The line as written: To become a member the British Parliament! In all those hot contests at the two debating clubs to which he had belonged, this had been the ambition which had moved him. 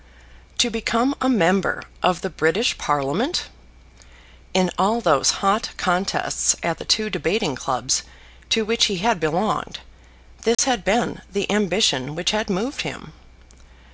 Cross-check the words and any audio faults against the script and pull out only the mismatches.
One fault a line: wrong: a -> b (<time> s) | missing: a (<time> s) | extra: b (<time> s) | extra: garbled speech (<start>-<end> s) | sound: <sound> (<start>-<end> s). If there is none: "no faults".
extra: of (2.0 s)
sound: dropout (10.5-10.6 s)